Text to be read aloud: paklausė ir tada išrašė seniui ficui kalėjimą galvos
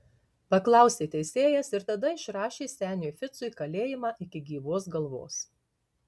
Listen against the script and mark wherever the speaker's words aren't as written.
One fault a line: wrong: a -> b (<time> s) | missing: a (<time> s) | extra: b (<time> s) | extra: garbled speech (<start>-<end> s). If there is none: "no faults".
extra: teisėjas (1.1 s)
extra: iki gyvos (4.3 s)